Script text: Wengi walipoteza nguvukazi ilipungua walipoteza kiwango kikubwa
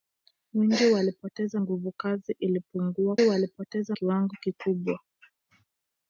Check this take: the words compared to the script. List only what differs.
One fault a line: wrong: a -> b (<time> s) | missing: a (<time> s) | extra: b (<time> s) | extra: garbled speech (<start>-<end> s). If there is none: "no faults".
no faults